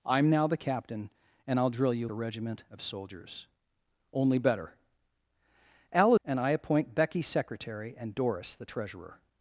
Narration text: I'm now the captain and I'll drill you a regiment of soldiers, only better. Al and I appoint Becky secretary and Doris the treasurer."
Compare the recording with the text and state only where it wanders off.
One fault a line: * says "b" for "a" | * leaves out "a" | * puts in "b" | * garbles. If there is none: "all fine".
all fine